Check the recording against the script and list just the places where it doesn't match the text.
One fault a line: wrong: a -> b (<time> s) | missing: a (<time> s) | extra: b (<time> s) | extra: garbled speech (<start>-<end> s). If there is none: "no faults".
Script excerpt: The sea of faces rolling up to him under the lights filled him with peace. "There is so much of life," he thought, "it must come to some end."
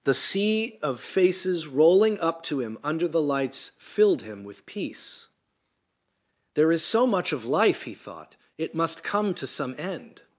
no faults